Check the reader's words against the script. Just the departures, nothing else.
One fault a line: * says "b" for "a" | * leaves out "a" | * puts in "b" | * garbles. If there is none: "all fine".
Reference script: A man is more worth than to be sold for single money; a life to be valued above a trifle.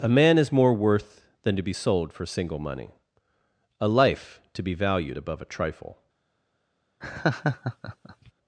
all fine